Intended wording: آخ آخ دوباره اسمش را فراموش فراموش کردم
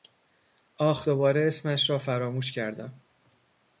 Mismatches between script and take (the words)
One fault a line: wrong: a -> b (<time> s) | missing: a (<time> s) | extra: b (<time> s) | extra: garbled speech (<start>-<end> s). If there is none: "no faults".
missing: آخ (1.1 s)
missing: فراموش (2.5 s)